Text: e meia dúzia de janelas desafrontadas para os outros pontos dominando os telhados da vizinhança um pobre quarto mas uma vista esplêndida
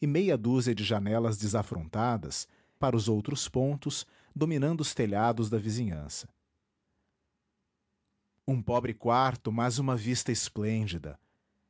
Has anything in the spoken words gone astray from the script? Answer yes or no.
no